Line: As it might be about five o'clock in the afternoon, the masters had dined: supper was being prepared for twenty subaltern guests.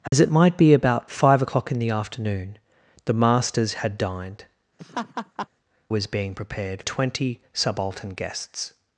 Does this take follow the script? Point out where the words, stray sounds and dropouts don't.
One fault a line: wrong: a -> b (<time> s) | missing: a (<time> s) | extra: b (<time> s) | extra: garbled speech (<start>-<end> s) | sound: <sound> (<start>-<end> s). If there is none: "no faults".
sound: dropout (0.1-0.1 s)
missing: supper (4.5 s)
sound: laugh (4.8-5.5 s)
missing: for (6.8 s)